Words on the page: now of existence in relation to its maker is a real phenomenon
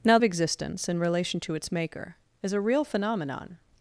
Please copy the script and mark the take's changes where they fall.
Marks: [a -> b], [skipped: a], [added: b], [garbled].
now of existence in relation to its maker is a real phenomenon